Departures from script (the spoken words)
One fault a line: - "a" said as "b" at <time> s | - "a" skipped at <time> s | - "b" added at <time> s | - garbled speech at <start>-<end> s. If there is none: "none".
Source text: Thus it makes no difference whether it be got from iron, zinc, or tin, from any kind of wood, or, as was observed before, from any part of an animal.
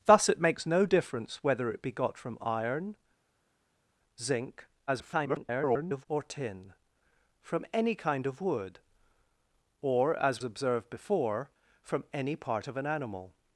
- garbled speech at 4.9-6.1 s
- "was" skipped at 10.4 s